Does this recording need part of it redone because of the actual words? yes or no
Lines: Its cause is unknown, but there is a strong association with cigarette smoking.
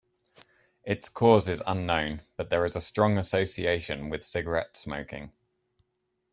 no